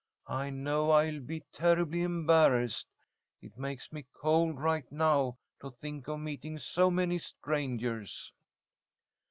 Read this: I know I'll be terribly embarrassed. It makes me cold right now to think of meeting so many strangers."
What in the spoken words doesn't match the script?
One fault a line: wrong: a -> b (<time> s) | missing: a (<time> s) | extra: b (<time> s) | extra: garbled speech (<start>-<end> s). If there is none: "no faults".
no faults